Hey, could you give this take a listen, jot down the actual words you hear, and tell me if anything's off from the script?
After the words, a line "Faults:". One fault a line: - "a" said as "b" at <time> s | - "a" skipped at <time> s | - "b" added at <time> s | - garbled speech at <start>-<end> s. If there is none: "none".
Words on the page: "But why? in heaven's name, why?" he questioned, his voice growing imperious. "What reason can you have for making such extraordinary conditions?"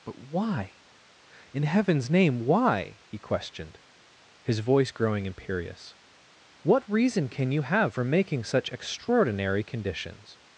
"But why? in heaven's name, why?" he questioned, his voice growing imperious. "What reason can you have for making such extraordinary conditions?"
Faults:
none